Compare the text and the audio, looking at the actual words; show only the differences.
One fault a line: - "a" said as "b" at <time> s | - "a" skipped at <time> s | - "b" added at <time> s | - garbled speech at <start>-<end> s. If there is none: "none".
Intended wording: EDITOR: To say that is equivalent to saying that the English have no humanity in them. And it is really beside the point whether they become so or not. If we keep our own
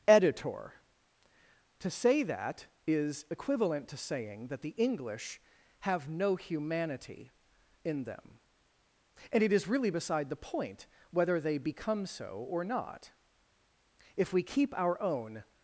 none